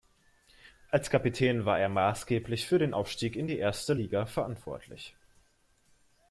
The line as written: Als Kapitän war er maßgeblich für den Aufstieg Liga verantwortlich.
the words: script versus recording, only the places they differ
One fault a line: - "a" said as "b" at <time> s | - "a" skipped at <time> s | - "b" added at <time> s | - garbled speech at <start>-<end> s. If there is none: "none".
- "in die Erste" added at 3.3 s